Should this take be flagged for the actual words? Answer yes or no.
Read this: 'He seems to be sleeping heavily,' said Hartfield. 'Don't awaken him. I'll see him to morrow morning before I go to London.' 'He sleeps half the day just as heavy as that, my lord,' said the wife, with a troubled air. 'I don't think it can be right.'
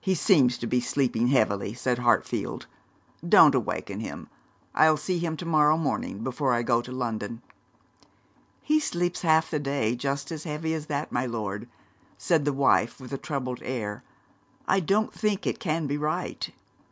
no